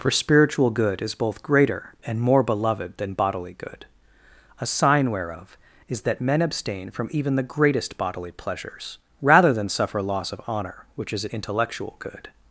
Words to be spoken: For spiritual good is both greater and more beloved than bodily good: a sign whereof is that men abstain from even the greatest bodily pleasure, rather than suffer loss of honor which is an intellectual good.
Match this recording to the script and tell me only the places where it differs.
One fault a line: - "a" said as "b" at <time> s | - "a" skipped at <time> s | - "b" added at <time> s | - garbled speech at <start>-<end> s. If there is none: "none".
- "pleasure" said as "pleasures" at 8.3 s